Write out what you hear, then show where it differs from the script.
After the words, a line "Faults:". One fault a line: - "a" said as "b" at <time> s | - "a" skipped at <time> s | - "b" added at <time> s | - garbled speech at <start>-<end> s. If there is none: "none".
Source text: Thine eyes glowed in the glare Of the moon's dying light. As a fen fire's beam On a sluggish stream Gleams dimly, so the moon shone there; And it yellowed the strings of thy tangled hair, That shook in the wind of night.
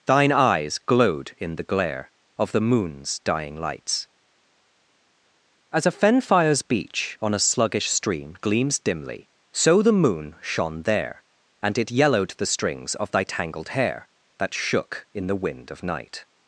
Thine eyes glowed in the glare Of the moon's dying lights. As a fen fire's beach On a sluggish stream Gleams dimly, so the moon shone there; And it yellowed the strings of thy tangled hair, That shook in the wind of night.
Faults:
- "light" said as "lights" at 3.6 s
- "beam" said as "beach" at 6.6 s